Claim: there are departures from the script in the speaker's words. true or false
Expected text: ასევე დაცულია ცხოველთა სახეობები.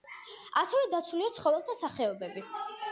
false